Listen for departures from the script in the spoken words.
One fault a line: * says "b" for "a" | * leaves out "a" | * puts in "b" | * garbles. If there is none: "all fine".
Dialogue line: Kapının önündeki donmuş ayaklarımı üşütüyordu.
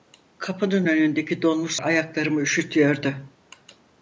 all fine